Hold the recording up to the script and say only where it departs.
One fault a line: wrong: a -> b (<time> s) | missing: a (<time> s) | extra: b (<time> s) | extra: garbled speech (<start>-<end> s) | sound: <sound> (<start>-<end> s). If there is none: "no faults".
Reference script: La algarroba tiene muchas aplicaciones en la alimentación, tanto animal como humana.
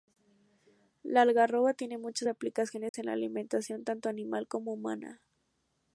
sound: dropout (2.9-2.9 s)